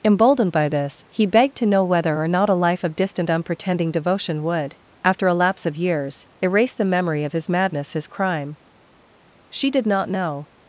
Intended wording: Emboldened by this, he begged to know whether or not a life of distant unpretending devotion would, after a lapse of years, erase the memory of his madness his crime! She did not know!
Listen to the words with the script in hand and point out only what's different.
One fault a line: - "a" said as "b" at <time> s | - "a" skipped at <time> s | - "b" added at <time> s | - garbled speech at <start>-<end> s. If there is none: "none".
none